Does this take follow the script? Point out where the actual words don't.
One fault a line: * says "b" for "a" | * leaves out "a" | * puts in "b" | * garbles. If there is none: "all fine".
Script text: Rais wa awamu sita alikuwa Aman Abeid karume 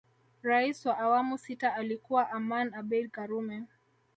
all fine